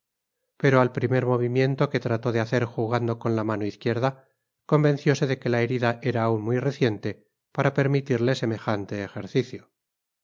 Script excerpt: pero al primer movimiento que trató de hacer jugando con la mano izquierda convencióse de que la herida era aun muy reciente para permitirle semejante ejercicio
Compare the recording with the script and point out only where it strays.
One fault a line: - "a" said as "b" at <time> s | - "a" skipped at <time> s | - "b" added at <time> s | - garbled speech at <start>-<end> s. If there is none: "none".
none